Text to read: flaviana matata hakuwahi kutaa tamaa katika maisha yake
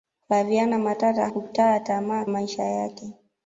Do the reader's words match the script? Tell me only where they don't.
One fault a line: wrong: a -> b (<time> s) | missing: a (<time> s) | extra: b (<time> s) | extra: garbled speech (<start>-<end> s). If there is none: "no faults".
missing: hakuwahi (1.3 s)
missing: katika (2.3 s)